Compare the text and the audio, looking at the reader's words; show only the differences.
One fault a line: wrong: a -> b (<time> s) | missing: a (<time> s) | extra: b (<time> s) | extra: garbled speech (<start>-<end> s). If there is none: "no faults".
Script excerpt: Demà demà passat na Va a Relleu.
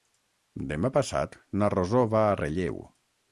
missing: demà (0.9 s)
extra: Rosó (1.8 s)